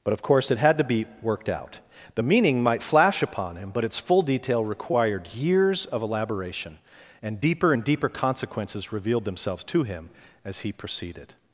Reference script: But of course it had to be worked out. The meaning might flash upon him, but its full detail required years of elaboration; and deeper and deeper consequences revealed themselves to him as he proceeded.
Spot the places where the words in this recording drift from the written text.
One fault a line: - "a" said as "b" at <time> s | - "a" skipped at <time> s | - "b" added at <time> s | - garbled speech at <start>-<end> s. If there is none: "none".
none